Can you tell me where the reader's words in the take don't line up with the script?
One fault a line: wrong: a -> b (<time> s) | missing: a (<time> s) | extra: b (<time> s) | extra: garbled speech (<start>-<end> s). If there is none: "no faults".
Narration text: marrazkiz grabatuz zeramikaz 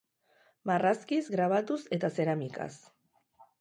extra: eta (2.0 s)